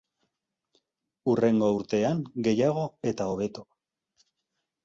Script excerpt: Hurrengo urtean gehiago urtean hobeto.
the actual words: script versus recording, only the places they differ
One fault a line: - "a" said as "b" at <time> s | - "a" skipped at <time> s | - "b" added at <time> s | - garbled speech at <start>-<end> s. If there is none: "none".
- "urtean" said as "eta" at 3.1 s